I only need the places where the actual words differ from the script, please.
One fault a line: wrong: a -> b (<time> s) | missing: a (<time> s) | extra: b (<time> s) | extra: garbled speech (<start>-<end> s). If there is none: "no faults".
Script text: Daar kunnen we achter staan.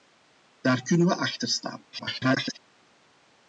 extra: garbled speech (1.9-2.6 s)